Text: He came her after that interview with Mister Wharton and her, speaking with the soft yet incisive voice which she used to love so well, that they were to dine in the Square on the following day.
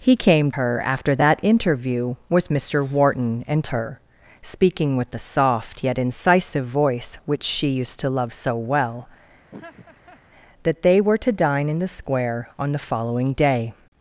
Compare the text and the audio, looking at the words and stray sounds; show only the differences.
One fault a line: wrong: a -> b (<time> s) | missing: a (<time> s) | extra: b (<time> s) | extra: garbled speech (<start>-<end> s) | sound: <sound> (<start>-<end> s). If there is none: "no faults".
sound: laugh (9.5-10.2 s)